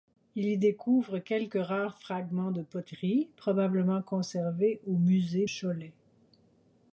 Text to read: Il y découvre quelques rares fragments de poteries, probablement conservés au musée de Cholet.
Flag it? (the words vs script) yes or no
yes